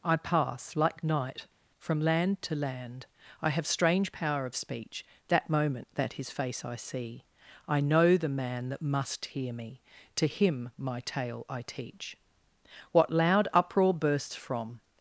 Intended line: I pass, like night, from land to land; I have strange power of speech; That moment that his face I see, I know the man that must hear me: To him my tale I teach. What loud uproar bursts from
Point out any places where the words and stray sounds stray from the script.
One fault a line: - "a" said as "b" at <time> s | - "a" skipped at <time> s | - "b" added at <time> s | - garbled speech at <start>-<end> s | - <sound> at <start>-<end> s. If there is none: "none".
none